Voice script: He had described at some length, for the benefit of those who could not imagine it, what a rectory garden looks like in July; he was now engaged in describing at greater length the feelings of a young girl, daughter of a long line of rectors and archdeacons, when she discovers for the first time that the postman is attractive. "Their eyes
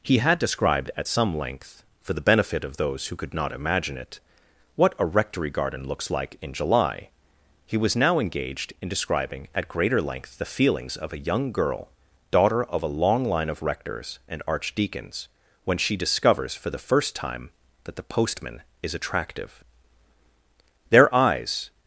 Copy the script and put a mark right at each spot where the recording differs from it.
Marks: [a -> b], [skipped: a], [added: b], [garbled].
He had described at some length, for the benefit of those who could not imagine it, what a rectory garden looks like in July; he was now engaged in describing at greater length the feelings of a young girl, daughter of a long line of rectors and archdeacons, when she discovers for the first time that the postman is attractive. "Their eyes